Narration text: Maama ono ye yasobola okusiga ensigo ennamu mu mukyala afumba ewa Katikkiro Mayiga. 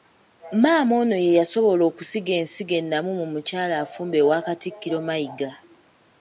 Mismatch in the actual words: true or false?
false